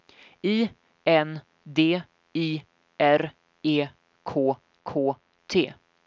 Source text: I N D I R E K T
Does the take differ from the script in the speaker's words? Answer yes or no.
yes